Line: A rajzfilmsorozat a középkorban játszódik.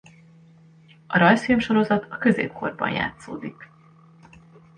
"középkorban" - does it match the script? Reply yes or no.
yes